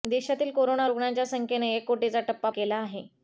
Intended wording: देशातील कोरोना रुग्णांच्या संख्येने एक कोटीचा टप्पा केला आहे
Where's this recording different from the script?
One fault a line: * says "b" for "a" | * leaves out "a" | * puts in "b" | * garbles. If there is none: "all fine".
all fine